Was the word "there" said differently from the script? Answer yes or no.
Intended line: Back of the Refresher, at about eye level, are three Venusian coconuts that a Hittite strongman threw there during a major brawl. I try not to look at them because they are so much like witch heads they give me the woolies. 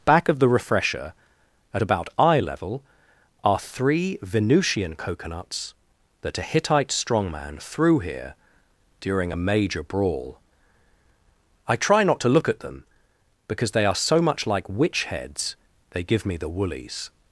yes